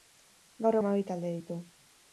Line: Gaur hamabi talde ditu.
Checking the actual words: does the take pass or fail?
pass